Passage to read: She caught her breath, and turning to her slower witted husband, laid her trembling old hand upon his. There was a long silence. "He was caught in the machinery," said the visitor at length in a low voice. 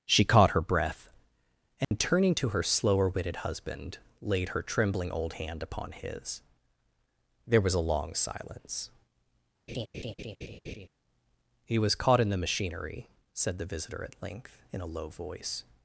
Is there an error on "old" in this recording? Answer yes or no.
no